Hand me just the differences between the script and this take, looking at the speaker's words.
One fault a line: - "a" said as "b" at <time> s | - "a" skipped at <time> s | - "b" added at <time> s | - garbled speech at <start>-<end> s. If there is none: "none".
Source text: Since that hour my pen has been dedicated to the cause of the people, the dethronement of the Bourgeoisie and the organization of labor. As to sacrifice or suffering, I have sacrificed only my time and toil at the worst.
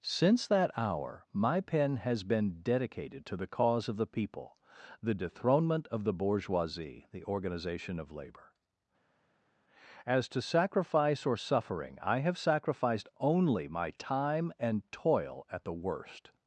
- "and" skipped at 7.0 s